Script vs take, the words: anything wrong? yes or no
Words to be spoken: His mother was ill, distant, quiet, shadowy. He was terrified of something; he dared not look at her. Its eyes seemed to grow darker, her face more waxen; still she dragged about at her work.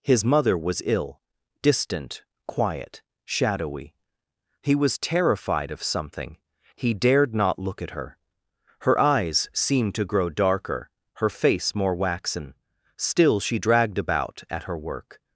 yes